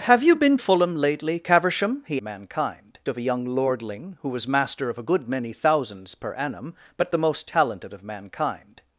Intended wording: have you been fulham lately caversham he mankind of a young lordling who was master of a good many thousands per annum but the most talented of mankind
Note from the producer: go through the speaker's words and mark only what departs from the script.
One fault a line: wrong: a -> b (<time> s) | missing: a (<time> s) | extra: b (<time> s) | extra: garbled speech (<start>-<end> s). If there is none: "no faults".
no faults